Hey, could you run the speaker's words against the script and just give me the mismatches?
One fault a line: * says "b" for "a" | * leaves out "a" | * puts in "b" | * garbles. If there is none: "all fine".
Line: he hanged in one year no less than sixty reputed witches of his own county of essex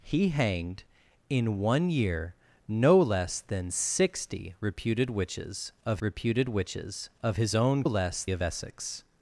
* puts in "reputed witches of"
* says "less" for "county"